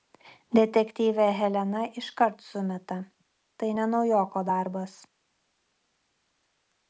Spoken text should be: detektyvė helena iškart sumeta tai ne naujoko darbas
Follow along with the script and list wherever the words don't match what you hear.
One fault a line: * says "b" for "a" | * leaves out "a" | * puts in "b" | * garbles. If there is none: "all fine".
all fine